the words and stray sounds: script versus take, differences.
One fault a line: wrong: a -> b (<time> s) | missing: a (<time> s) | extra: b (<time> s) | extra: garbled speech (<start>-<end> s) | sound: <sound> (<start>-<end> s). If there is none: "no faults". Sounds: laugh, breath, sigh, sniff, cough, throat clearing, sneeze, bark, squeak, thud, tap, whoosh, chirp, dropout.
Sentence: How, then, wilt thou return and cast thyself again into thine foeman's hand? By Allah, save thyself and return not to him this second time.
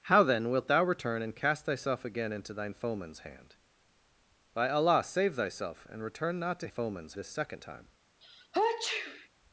wrong: him -> foeman's (6.7 s)
sound: sneeze (8.2-9.3 s)